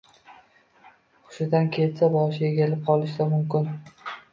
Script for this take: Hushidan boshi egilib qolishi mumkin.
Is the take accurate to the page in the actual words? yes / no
no